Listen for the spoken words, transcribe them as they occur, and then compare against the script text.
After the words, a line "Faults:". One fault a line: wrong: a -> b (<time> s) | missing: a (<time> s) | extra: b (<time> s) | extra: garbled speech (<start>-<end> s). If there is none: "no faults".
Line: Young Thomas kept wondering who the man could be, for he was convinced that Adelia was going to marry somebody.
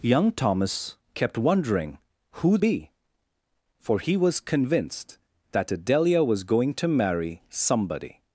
Young Thomas kept wondering who be, for he was convinced that Adelia was going to marry somebody.
Faults:
missing: the man could (2.6 s)